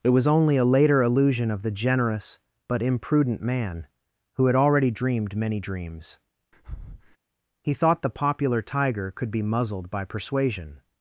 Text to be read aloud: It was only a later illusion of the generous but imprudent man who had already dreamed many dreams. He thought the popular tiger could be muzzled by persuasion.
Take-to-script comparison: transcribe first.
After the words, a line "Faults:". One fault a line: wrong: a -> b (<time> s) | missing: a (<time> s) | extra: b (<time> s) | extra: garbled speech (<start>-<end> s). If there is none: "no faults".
It was only a later illusion of the generous but imprudent man who had already dreamed many dreams. He thought the popular tiger could be muzzled by persuasion.
Faults:
no faults